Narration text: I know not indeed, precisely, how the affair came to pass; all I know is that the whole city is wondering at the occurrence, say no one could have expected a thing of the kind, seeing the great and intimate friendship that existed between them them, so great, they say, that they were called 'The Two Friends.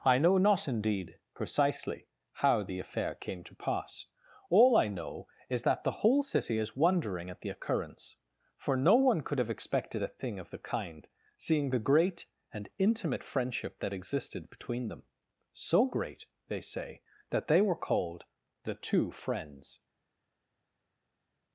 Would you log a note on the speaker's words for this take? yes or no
yes